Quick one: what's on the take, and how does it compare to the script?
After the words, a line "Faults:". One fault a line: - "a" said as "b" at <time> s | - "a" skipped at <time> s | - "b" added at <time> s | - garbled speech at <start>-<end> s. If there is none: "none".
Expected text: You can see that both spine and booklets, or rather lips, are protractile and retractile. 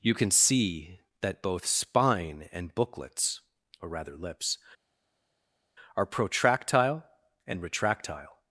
You can see that both spine and booklets, or rather lips, are protractile and retractile.
Faults:
none